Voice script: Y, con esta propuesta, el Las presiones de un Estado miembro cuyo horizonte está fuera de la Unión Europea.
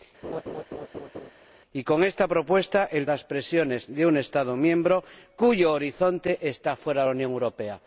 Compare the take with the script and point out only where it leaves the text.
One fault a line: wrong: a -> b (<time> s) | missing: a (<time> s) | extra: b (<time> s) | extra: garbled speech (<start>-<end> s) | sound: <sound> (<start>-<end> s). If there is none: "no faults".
sound: laugh (0.2-1.3 s)